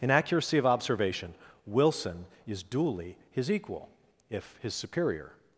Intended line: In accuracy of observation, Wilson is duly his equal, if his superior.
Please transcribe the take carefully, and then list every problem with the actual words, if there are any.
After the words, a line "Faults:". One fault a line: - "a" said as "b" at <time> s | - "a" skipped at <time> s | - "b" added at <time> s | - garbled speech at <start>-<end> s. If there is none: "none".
In accuracy of observation, Wilson is duly his equal, if his superior.
Faults:
none